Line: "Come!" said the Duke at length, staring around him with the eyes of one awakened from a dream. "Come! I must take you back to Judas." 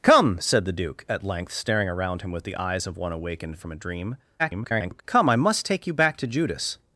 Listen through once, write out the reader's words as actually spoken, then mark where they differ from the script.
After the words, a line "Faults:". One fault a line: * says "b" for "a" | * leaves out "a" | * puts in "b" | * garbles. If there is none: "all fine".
"Come!" said the Duke at length, staring around him with the eyes of one awakened from a dream. [garbled] "Come! I must take you back to Judas."
Faults:
* garbles